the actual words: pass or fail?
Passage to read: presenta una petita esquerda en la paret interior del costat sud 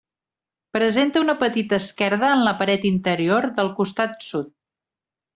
pass